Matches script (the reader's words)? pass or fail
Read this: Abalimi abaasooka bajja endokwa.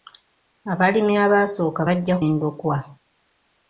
pass